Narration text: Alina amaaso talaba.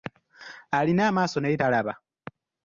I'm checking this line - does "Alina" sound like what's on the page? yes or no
yes